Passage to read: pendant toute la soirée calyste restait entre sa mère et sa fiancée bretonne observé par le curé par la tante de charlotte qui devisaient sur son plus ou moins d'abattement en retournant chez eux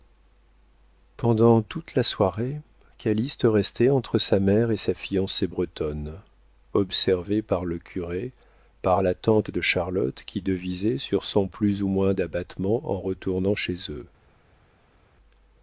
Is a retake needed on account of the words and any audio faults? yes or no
no